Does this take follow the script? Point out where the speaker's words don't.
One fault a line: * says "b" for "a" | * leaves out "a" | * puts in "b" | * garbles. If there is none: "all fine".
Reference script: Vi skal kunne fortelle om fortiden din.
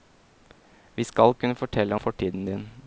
* leaves out "om"